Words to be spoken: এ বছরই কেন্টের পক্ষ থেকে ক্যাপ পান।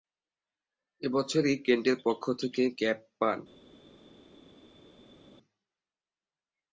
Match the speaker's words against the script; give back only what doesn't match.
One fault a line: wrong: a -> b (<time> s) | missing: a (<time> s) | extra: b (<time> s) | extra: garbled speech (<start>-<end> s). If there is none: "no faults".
no faults